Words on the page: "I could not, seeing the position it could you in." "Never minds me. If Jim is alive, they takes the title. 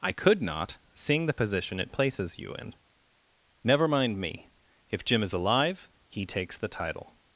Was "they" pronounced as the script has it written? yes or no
no